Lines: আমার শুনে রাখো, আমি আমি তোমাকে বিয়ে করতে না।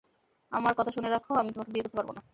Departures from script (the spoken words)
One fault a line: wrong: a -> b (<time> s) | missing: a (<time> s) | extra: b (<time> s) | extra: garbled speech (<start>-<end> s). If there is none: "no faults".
extra: কথা (0.8 s)
missing: আমি (1.5 s)
extra: পারব (2.0 s)